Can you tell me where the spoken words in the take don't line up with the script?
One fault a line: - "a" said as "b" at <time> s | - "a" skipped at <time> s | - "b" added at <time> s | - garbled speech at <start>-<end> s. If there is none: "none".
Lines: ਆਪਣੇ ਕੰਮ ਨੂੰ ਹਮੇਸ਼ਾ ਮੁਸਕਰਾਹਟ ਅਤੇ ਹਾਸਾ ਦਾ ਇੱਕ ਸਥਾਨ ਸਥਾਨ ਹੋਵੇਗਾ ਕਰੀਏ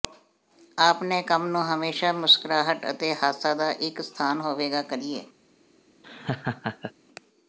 - "ਸਥਾਨ" skipped at 4.4 s